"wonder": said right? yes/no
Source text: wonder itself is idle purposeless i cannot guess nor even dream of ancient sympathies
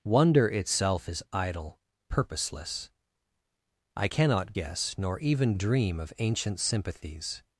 yes